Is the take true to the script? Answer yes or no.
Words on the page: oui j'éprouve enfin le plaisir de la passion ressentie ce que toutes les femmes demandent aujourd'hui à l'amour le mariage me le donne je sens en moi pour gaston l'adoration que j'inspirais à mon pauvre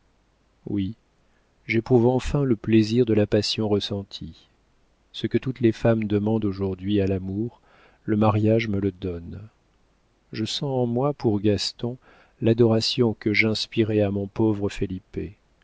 yes